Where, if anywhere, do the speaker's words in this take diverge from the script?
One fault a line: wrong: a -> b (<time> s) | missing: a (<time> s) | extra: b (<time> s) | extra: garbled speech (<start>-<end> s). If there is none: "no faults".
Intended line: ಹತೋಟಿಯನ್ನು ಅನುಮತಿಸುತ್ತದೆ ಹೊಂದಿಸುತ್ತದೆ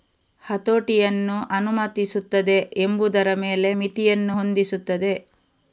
extra: ಎಂಬುದರ ಮೇಲೆ ಮಿತಿಯನ್ನು (2.8 s)